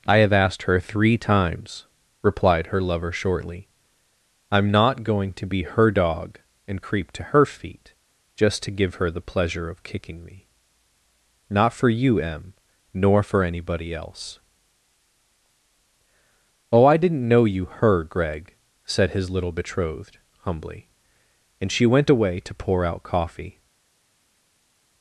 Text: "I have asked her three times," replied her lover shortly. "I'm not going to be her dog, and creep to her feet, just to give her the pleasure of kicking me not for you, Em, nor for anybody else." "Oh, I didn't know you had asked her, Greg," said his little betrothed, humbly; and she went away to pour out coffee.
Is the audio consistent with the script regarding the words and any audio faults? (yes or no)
no